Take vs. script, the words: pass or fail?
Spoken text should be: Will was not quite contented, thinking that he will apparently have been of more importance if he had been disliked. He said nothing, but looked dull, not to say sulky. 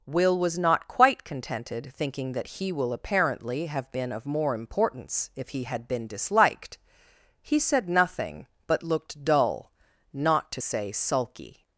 pass